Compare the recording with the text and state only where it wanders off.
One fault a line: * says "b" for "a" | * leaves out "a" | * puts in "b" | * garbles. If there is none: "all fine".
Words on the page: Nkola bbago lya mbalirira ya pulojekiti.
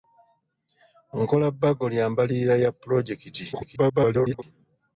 * garbles